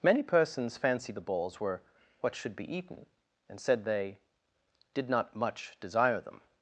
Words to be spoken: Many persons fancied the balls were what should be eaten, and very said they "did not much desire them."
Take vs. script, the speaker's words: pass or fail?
fail